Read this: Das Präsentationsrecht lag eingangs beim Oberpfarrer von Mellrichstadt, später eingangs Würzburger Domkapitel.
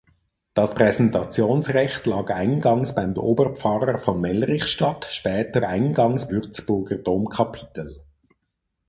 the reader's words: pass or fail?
pass